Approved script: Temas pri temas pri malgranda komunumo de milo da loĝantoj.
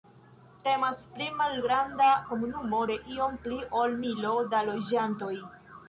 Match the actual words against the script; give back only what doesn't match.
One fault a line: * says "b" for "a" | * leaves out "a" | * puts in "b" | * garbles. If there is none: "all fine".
* leaves out "temas pri"
* puts in "iom pli ol"